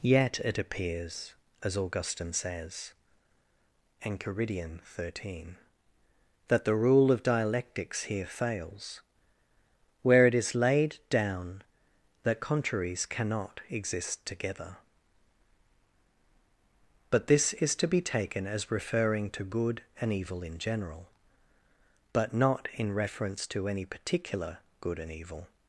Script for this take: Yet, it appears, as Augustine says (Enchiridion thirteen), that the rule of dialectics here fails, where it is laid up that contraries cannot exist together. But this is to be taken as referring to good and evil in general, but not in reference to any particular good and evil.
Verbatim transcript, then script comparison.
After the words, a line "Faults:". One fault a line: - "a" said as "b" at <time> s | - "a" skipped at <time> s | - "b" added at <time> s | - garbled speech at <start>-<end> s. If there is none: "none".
Yet, it appears, as Augustine says (Enchiridion thirteen), that the rule of dialectics here fails, where it is laid down that contraries cannot exist together. But this is to be taken as referring to good and evil in general, but not in reference to any particular good and evil.
Faults:
- "up" said as "down" at 11.1 s